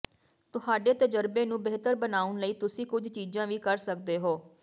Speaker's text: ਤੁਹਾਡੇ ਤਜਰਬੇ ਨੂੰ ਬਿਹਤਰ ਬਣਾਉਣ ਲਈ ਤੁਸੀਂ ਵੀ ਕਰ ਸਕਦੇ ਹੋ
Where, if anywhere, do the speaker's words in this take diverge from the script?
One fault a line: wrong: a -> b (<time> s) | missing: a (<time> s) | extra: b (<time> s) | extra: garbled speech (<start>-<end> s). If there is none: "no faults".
extra: ਕੁਝ ਚੀਜ਼ਾਂ (2.9 s)